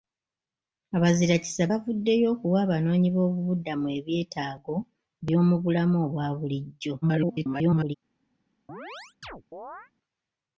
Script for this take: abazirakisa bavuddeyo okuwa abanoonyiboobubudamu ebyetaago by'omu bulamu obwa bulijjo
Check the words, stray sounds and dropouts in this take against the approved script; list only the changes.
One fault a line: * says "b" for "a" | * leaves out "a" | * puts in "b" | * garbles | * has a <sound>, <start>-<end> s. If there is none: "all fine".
* garbles
* has a chirp, 8.7-9.9 s